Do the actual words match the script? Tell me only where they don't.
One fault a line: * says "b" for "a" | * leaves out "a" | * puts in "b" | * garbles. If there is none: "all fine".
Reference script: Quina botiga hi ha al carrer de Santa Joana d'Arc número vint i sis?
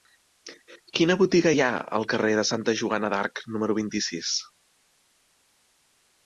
all fine